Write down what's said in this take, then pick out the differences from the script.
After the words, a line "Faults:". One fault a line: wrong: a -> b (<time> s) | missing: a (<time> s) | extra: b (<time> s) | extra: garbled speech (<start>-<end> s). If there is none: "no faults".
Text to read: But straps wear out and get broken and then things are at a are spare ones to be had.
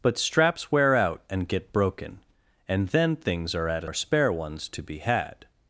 But straps wear out and get broken and then things are at a are spare ones to be had.
Faults:
no faults